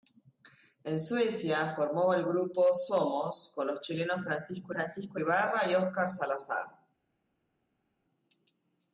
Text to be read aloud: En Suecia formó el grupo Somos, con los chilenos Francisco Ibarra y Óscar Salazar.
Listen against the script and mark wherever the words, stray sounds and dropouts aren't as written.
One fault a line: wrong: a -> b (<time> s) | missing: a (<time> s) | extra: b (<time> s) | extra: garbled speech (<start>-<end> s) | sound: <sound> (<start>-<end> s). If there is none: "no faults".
extra: Francisco (4.7 s)